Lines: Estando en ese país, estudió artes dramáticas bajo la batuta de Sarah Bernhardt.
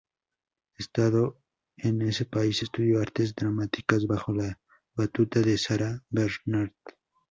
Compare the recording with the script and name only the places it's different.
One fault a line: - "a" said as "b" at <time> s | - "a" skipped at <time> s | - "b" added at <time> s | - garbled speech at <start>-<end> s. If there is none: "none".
none